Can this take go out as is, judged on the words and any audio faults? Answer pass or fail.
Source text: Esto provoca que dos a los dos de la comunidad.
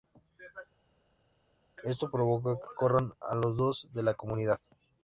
fail